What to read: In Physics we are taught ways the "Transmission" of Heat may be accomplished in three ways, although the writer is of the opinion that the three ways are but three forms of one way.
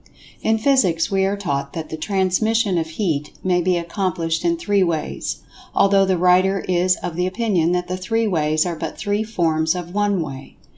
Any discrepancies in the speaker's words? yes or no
yes